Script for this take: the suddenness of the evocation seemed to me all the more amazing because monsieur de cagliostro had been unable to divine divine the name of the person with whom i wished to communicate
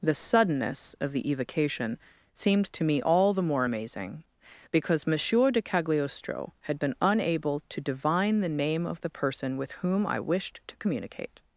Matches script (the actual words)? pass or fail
fail